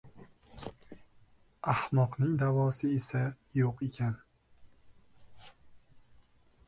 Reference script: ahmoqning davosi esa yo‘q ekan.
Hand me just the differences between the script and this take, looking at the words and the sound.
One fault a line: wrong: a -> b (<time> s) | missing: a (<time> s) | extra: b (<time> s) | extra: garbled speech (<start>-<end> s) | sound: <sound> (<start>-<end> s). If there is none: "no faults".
no faults